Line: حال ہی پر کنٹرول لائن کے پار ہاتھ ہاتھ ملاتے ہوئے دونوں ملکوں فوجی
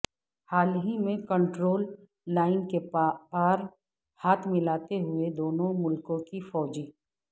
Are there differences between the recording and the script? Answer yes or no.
yes